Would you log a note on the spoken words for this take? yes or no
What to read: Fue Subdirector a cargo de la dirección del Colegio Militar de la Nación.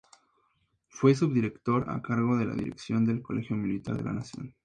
no